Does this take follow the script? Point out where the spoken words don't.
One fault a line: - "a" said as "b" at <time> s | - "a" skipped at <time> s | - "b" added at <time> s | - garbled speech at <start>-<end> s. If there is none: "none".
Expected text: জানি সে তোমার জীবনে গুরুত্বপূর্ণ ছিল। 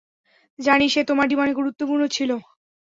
none